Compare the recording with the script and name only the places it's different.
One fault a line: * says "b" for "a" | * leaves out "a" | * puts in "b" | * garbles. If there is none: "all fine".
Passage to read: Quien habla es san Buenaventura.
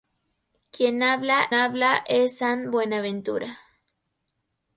* puts in "habla"